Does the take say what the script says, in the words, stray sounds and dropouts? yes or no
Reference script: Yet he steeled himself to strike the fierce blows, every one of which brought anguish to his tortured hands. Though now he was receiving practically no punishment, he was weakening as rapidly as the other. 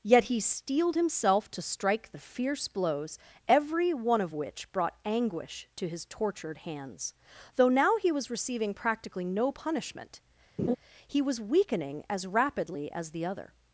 no